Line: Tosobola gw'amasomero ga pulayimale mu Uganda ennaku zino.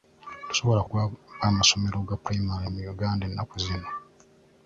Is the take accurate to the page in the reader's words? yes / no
yes